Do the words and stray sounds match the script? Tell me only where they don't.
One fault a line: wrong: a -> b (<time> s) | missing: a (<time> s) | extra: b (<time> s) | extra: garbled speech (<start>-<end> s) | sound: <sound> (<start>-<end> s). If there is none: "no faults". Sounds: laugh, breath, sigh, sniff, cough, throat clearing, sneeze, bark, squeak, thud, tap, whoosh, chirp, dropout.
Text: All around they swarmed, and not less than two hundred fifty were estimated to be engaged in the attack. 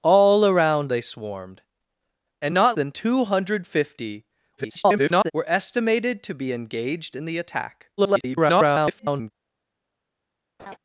missing: less (2.8 s)
extra: garbled speech (4.6-5.3 s)
extra: garbled speech (8.0-9.3 s)
sound: laugh (10.6-10.8 s)